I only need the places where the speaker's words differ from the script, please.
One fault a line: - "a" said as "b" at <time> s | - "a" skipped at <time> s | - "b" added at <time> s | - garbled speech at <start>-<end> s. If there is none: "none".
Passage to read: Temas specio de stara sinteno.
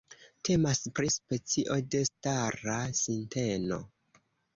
- "pri" added at 1.0 s